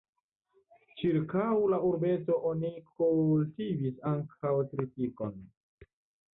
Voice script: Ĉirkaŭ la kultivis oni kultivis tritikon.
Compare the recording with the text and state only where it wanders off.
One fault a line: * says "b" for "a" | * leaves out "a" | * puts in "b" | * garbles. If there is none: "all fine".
* says "urbeto" for "kultivis"
* puts in "ankaŭ"